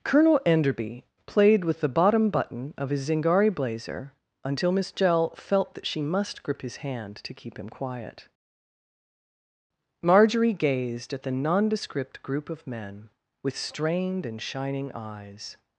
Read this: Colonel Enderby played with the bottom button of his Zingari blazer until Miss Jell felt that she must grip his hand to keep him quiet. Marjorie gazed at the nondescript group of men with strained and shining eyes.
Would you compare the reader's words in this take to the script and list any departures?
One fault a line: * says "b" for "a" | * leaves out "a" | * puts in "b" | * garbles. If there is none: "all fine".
all fine